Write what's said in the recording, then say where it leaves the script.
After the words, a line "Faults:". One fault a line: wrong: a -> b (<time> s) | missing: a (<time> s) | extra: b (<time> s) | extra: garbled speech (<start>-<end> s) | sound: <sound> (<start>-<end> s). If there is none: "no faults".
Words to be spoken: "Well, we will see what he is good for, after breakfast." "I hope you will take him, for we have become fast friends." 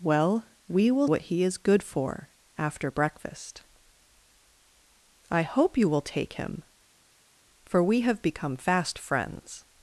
"Well, we will what he is good for, after breakfast." "I hope you will take him, for we have become fast friends."
Faults:
missing: see (1.1 s)